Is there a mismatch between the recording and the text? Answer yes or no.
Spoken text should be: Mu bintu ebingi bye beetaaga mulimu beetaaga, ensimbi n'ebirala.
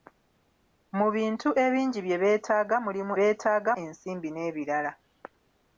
no